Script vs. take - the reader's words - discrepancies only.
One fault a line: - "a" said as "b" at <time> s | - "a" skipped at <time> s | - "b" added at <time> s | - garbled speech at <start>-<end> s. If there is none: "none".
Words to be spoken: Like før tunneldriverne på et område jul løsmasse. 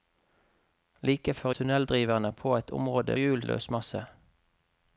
none